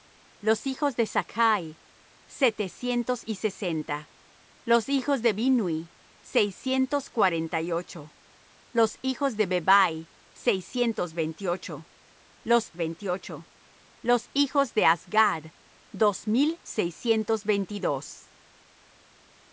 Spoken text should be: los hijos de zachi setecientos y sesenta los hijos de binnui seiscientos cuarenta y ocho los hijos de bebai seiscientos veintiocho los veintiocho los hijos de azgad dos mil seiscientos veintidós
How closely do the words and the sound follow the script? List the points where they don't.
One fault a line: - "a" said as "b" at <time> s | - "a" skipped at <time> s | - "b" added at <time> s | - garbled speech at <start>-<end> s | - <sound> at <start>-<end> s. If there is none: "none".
none